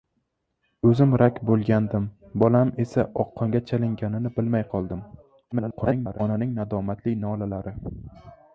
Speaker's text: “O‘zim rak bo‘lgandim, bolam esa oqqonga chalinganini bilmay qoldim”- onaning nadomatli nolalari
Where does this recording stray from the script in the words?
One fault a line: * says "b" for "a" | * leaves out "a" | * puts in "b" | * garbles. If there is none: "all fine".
* garbles